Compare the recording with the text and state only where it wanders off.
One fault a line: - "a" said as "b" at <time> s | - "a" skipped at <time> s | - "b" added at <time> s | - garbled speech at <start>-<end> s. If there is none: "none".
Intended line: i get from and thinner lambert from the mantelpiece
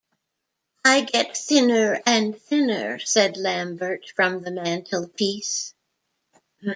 - "from" said as "thinner" at 1.4 s
- "said" added at 3.0 s